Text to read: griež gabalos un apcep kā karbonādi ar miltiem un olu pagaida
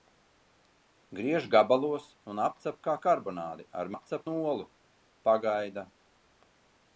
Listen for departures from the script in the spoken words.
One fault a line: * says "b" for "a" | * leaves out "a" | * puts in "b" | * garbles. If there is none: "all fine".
* says "apcep" for "miltiem"